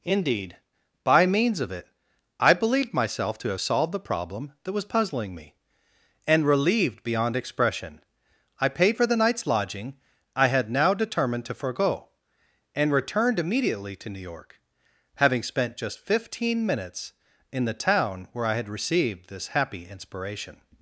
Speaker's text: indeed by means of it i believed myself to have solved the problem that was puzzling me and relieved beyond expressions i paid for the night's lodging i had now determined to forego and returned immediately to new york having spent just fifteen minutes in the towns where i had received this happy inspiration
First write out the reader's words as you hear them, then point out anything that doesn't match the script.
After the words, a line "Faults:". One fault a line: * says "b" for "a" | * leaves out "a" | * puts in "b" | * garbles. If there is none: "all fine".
indeed by means of it i believed myself to have solved the problem that was puzzling me and relieved beyond expression i paid for the night's lodging i had now determined to forego and returned immediately to new york having spent just fifteen minutes in the town where i had received this happy inspiration
Faults:
* says "expression" for "expressions"
* says "town" for "towns"